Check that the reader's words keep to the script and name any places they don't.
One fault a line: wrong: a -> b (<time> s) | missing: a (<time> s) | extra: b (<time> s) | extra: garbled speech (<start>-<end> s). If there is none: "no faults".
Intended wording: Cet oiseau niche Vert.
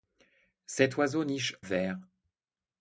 no faults